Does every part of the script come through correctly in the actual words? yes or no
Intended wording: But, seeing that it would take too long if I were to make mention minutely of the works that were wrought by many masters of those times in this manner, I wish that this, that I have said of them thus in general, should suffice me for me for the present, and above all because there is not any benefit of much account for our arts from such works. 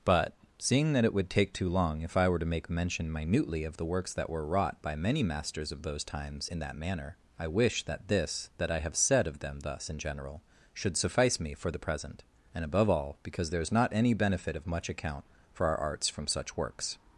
no